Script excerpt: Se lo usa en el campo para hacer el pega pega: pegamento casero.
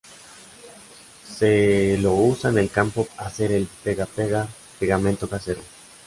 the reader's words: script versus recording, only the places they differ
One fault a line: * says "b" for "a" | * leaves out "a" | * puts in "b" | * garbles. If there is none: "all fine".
* leaves out "para"